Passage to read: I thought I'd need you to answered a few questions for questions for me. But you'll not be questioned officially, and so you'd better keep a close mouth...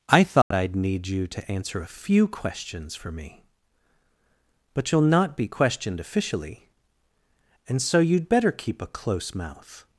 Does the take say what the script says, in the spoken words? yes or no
no